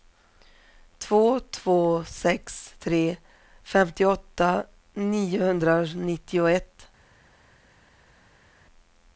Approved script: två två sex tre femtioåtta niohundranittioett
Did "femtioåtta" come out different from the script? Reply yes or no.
no